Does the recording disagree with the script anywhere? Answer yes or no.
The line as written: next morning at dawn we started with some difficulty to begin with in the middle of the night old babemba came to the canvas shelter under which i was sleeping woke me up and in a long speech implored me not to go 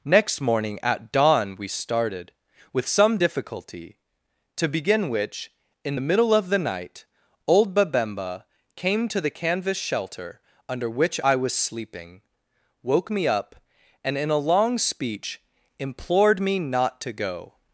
yes